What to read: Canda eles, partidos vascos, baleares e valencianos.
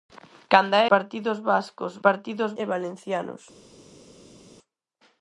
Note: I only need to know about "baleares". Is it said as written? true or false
false